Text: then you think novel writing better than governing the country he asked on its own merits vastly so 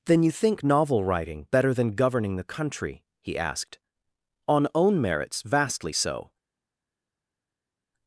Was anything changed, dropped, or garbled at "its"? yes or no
yes